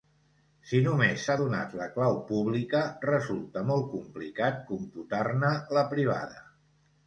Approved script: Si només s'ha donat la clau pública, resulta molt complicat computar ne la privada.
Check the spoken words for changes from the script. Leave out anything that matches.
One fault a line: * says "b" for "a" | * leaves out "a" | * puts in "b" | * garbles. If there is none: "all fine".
all fine